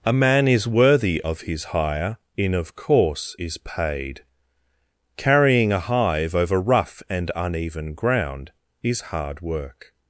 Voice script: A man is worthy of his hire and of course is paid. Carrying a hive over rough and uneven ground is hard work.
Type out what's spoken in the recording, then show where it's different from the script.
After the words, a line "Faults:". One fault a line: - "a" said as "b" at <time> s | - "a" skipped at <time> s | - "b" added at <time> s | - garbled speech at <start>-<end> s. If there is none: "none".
A man is worthy of his hire in of course is paid. Carrying a hive over rough and uneven ground is hard work.
Faults:
- "and" said as "in" at 2.4 s